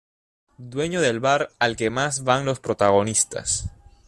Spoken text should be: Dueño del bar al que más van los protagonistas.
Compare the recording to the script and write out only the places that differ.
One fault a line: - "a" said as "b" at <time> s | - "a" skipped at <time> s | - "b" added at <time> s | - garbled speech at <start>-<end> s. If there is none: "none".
none